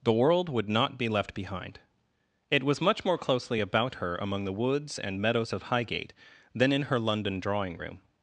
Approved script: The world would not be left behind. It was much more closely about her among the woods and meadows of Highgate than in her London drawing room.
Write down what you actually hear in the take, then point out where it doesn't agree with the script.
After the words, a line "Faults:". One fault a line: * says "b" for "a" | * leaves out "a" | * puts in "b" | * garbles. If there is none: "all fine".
The world would not be left behind. It was much more closely about her among the woods and meadows of Highgate than in her London drawing room.
Faults:
all fine